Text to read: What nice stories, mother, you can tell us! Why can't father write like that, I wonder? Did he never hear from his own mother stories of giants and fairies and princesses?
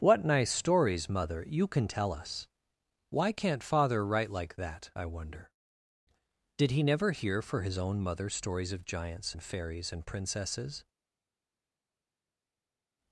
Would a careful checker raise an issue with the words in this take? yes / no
yes